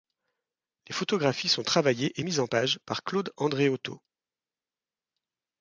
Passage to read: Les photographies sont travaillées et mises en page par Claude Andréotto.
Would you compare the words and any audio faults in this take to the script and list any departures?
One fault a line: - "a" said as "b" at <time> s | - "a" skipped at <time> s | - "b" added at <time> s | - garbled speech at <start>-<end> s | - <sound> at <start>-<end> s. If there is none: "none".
none